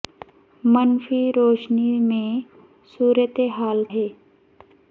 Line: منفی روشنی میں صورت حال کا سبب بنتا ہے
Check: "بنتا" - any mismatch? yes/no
yes